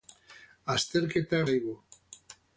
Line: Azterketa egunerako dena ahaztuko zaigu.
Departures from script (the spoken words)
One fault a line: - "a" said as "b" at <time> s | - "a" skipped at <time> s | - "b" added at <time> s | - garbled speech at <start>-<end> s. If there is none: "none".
- "egunerako dena ahaztuko" skipped at 1.4 s